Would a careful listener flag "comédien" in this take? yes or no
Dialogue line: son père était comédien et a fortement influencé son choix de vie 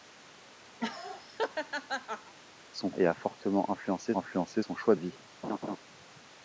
yes